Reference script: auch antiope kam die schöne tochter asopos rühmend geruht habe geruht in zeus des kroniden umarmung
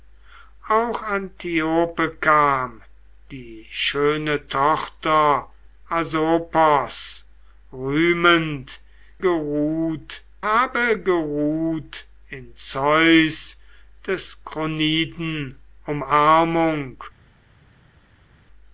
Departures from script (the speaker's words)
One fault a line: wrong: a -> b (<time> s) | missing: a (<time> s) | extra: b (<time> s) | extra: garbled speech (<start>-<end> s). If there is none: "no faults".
no faults